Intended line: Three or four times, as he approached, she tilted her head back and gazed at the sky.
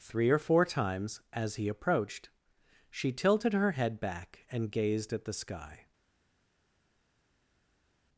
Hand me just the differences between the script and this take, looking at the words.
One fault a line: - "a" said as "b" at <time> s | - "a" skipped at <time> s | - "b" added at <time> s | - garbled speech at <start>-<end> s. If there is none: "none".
none